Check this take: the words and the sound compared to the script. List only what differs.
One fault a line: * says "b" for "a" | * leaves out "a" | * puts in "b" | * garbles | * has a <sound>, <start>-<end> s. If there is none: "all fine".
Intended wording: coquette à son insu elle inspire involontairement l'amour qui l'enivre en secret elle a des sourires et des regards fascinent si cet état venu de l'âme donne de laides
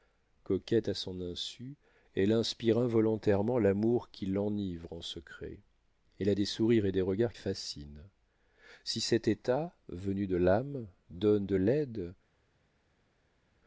all fine